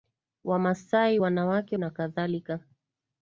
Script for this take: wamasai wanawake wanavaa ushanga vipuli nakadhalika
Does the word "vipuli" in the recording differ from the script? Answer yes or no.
yes